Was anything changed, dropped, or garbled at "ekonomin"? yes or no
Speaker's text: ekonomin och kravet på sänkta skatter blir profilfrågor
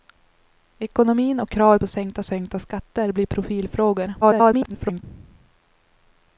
no